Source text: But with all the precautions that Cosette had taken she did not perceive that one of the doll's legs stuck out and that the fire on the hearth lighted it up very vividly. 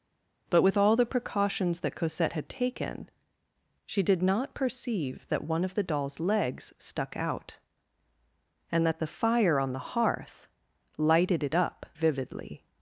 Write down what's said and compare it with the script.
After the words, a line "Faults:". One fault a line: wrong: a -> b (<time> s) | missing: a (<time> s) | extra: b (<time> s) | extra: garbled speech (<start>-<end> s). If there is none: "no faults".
But with all the precautions that Cosette had taken she did not perceive that one of the doll's legs stuck out and that the fire on the hearth lighted it up vividly.
Faults:
missing: very (11.8 s)